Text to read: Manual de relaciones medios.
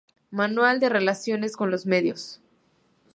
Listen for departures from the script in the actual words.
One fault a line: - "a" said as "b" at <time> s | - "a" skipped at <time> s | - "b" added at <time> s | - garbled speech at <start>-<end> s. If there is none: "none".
- "con los" added at 1.6 s